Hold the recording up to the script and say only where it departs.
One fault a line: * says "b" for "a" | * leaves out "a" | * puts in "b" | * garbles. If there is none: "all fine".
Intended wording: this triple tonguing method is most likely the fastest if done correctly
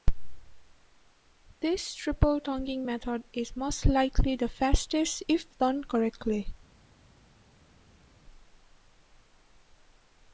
all fine